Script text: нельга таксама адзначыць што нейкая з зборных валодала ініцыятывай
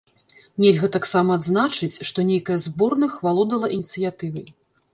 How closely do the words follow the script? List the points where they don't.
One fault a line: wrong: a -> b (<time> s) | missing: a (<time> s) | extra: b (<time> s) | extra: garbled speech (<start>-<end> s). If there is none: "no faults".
no faults